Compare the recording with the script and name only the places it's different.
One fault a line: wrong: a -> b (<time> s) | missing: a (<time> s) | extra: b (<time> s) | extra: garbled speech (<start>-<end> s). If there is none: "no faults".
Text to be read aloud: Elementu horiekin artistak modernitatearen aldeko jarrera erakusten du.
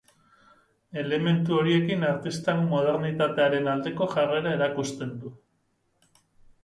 no faults